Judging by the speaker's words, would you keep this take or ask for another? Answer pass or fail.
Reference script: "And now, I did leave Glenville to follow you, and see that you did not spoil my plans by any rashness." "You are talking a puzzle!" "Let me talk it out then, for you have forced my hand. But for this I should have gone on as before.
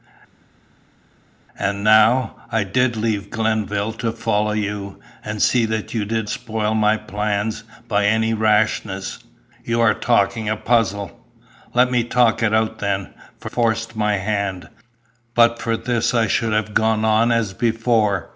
fail